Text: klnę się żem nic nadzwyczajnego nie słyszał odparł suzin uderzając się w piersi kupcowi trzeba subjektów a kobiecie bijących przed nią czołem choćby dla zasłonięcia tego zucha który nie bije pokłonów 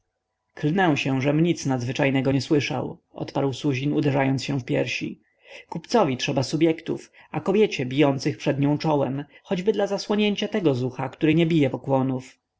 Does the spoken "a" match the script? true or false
true